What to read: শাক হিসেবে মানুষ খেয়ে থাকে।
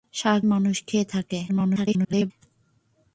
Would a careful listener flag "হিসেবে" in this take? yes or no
yes